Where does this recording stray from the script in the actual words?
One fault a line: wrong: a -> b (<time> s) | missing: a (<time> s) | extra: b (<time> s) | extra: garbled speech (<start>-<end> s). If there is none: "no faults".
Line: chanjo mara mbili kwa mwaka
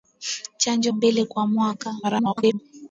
missing: mara (0.9 s)
extra: garbled speech (2.0-2.6 s)